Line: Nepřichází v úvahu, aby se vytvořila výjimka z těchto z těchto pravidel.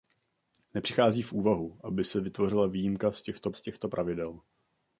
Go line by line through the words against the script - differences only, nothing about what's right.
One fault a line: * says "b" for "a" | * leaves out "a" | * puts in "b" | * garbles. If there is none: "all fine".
all fine